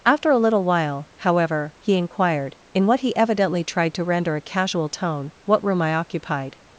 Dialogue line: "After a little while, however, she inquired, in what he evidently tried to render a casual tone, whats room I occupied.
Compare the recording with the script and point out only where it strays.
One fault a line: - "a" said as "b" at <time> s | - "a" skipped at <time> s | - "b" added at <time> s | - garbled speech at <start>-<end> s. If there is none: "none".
- "she" said as "he" at 1.8 s
- "whats" said as "what" at 5.4 s